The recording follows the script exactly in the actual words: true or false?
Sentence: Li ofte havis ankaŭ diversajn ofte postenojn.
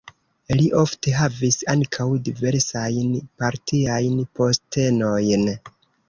false